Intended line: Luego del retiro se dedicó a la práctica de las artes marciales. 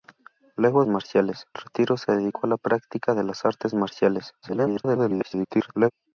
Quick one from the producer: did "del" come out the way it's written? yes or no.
no